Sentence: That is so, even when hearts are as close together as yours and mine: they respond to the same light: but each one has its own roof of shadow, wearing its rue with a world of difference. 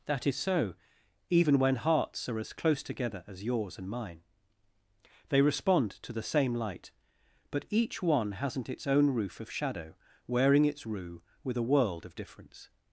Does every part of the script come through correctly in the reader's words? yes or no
no